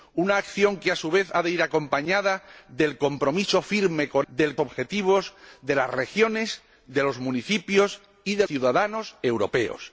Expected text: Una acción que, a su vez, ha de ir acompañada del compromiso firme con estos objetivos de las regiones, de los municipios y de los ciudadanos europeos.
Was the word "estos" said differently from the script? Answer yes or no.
yes